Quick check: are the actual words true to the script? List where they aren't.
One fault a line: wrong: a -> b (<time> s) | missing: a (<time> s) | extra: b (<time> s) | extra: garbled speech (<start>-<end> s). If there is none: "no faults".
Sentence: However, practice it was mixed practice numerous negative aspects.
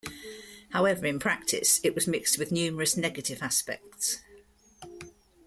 extra: in (1.1 s)
wrong: practice -> with (2.4 s)